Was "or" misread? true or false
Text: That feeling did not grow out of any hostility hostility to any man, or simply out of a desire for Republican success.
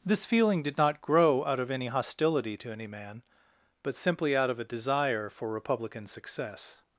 true